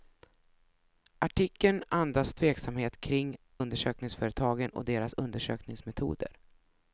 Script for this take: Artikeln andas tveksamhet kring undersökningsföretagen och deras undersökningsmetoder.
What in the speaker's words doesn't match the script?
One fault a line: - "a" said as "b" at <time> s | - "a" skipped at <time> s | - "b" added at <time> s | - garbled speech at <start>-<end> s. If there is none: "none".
none